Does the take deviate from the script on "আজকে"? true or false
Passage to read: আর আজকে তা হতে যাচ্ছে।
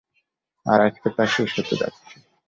false